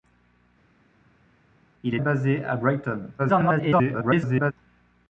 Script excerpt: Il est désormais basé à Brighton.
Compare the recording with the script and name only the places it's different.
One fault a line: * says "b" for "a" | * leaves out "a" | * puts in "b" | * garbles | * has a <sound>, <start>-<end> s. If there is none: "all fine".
* leaves out "désormais"
* garbles